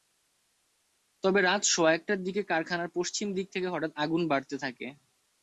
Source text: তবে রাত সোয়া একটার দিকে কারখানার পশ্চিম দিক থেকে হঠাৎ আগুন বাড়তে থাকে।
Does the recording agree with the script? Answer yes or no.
yes